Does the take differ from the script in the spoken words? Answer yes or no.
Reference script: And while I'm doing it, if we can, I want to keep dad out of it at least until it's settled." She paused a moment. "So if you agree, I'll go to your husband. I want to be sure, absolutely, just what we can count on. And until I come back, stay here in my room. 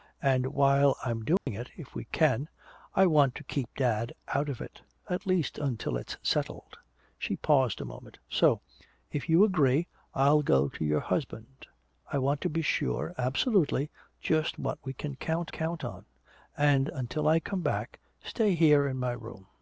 yes